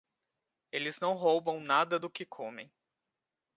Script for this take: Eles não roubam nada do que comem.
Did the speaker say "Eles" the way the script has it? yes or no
yes